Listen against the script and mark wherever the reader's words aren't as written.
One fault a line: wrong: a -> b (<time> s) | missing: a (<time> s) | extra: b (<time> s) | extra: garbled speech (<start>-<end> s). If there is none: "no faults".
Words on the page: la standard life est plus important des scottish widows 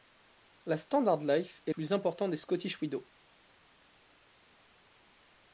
no faults